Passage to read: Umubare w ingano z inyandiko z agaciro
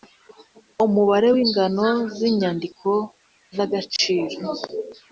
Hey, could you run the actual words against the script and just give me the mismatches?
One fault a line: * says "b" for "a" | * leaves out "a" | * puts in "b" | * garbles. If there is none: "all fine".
all fine